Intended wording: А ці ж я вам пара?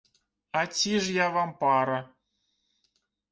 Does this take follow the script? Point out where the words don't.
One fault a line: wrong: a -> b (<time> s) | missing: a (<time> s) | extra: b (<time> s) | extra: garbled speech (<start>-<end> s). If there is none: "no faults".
no faults